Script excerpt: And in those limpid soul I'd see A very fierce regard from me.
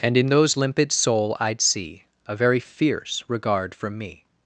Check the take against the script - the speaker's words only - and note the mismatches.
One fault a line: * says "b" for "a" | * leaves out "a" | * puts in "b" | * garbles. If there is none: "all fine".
all fine